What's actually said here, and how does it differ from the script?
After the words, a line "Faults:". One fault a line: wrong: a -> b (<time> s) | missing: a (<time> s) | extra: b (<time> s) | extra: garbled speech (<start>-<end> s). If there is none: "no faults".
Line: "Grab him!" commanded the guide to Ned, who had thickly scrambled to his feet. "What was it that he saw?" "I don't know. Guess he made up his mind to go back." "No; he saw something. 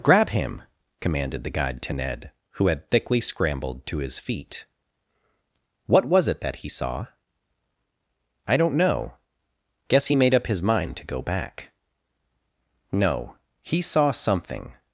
"Grab him!" commanded the guide to Ned, who had thickly scrambled to his feet. "What was it that he saw?" "I don't know. Guess he made up his mind to go back." "No; he saw something.
Faults:
no faults